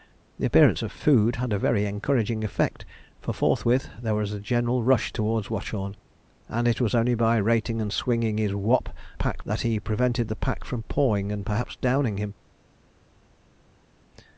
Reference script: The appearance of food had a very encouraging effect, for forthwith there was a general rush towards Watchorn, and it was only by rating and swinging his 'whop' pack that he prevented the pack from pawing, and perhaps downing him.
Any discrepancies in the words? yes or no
no